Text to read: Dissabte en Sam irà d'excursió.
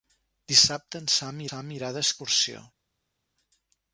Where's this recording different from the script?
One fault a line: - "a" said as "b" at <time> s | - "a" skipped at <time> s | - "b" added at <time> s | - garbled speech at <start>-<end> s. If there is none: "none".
- "Sam" added at 1.5 s